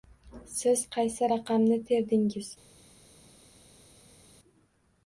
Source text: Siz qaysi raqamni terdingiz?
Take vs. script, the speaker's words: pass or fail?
pass